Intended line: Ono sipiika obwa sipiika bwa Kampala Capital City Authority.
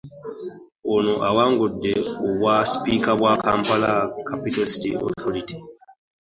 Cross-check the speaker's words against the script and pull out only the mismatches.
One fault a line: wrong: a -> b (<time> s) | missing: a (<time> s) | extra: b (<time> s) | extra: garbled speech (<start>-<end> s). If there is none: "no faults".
wrong: sipiika -> awangudde (1.3 s)